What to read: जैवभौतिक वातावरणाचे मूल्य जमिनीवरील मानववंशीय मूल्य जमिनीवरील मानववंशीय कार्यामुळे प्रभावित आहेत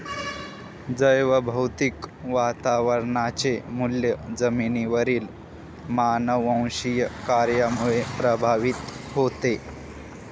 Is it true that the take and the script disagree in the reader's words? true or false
true